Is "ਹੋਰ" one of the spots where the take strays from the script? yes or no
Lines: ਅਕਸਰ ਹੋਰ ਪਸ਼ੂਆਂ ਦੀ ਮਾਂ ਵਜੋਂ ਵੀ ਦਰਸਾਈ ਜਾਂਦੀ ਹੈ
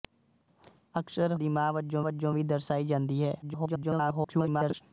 yes